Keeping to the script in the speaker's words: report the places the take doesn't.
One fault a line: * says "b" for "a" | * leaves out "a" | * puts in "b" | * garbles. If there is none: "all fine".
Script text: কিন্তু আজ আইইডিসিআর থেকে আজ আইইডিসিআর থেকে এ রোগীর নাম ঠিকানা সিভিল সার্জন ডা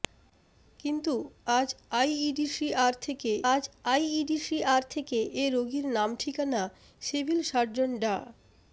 all fine